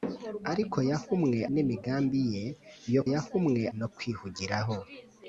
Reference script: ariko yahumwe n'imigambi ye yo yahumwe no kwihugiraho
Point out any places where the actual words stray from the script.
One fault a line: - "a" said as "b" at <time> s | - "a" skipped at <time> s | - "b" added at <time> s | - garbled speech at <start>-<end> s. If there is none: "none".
none